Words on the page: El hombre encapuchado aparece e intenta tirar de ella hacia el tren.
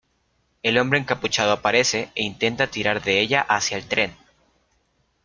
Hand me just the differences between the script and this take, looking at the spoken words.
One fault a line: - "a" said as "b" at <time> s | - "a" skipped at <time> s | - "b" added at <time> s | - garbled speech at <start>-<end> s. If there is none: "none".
none